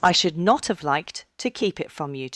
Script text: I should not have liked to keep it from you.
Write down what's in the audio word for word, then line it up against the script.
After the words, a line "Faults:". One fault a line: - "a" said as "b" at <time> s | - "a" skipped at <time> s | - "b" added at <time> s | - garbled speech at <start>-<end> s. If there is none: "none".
I should not have liked to keep it from you.
Faults:
none